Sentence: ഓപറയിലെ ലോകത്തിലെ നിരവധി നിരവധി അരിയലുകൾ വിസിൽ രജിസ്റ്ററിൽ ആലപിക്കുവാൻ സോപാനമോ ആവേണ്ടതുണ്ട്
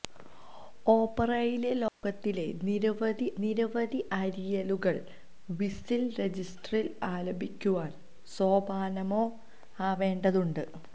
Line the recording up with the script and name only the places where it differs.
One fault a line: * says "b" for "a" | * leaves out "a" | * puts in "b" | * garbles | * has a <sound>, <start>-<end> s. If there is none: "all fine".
* has a dropout, 1.9-2.0 s